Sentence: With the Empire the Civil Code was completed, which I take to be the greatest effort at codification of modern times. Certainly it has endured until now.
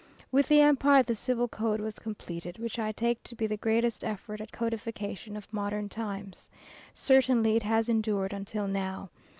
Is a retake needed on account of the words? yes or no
no